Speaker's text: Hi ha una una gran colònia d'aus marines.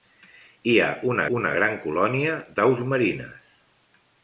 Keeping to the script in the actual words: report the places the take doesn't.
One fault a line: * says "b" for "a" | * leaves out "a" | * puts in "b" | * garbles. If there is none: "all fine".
all fine